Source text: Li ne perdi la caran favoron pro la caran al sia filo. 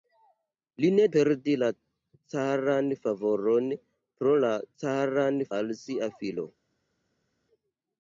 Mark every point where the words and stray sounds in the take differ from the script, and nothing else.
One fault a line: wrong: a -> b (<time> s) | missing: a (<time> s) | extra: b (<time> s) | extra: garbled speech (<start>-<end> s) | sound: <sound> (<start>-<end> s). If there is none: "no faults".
no faults